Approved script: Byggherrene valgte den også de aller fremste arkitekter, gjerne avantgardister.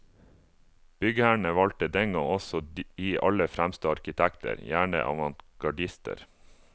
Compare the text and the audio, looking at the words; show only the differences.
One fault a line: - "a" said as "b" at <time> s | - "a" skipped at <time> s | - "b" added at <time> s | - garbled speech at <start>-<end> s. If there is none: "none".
- "gang" added at 2.1 s